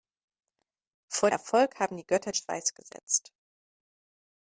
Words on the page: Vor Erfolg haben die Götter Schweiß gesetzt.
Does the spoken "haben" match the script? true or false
true